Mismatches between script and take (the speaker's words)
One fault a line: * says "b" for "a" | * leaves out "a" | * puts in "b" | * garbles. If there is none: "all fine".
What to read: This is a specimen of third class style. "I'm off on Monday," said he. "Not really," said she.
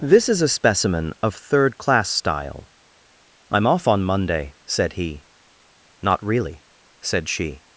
all fine